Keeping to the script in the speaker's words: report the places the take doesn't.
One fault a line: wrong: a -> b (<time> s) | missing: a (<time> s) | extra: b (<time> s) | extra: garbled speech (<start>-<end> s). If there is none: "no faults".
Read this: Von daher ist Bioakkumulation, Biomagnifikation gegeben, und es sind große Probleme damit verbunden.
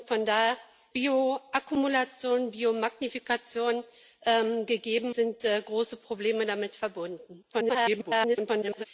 missing: ist (0.6 s)
missing: und es (5.1 s)
extra: garbled speech (7.5-8.8 s)